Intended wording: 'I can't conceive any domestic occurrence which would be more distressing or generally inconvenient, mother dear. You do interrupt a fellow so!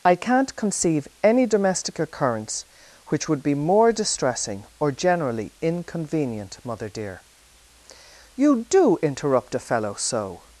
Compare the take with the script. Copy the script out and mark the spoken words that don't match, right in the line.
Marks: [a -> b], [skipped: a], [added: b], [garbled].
'I can't conceive any domestic occurrence which would be more distressing or generally inconvenient, mother dear. You do interrupt a fellow so!